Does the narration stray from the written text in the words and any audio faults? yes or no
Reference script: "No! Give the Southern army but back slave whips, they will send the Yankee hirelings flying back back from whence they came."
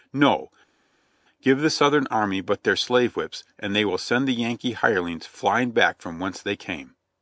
yes